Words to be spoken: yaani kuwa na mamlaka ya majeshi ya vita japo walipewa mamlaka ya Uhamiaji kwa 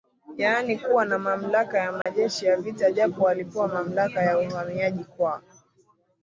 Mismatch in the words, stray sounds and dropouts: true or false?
true